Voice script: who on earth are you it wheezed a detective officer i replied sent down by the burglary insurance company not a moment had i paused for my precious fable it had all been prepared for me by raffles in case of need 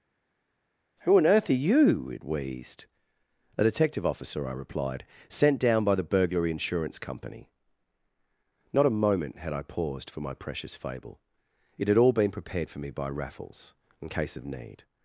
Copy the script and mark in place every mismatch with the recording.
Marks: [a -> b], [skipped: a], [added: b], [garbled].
who on earth are you it wheezed a detective officer i replied sent down by the burglary insurance company not a moment had i paused for my precious fable it had all been prepared for me by raffles in case of need